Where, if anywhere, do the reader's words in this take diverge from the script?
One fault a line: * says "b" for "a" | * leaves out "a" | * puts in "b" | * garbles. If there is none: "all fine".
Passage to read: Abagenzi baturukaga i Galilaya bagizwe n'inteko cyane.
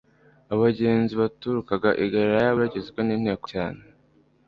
all fine